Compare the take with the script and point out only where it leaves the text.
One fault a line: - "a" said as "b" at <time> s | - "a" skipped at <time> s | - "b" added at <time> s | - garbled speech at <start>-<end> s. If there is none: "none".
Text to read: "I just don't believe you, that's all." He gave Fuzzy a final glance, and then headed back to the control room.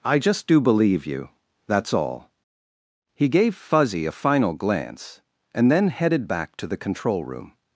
- "don't" said as "do" at 0.5 s